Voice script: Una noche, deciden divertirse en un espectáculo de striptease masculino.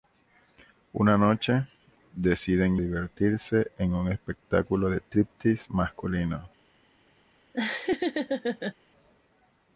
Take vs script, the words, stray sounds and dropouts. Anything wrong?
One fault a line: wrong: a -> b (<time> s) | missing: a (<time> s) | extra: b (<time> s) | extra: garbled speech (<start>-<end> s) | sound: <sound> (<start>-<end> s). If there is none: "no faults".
sound: laugh (7.5-8.7 s)